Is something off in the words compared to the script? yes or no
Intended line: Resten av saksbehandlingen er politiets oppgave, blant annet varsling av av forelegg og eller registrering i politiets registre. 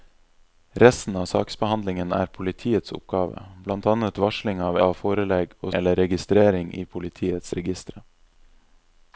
no